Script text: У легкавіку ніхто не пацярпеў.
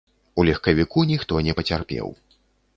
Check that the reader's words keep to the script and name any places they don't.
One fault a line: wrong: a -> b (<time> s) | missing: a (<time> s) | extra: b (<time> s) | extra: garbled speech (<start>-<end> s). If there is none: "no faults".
no faults